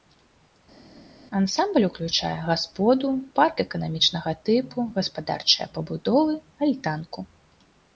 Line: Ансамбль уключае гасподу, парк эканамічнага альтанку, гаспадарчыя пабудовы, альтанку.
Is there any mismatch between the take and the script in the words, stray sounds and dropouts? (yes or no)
yes